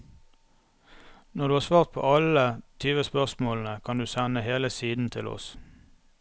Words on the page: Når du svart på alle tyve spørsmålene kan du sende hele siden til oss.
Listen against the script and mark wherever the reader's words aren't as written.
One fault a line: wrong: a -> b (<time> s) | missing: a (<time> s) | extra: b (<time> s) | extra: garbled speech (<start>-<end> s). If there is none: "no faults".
extra: har (1.5 s)